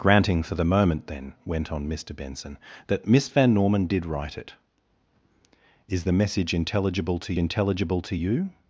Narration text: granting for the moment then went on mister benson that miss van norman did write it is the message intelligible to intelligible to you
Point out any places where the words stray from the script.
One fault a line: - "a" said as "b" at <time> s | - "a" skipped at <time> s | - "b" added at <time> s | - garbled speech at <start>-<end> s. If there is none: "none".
none